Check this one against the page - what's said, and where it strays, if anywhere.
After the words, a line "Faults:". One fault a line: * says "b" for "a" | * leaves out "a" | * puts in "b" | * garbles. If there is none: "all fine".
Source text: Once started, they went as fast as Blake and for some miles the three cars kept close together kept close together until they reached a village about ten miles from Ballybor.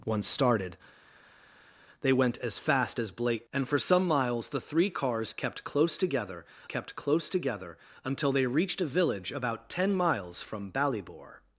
Once started, they went as fast as Blake and for some miles the three cars kept close together kept close together until they reached a village about ten miles from Ballybor.
Faults:
all fine